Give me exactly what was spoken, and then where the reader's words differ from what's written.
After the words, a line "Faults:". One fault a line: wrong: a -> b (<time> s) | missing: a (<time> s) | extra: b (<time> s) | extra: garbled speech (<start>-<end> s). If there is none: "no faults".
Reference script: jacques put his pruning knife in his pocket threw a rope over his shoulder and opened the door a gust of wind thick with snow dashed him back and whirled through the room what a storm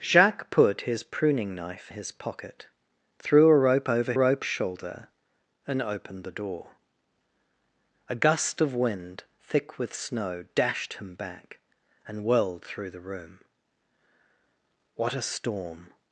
jacques put his pruning knife his pocket threw a rope over rope shoulder and opened the door a gust of wind thick with snow dashed him back and whirled through the room what a storm
Faults:
missing: in (1.9 s)
wrong: his -> rope (4.1 s)